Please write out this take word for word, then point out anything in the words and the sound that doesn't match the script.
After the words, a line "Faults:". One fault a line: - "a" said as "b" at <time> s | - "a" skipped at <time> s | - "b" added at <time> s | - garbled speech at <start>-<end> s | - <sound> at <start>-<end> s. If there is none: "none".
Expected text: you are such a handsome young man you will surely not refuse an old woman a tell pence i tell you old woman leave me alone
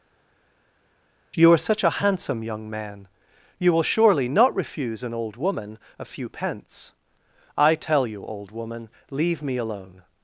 you are such a handsome young man you will surely not refuse an old woman a few pence i tell you old woman leave me alone
Faults:
- "tell" said as "few" at 6.0 s